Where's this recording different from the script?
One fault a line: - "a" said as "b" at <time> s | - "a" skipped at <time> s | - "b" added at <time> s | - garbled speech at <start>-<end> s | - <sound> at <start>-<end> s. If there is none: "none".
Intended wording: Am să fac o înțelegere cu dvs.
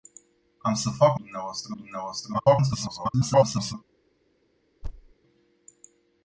- "înțelegere" said as "dvs" at 1.2 s
- garbled speech at 2.3-3.7 s
- thud at 4.8-5.1 s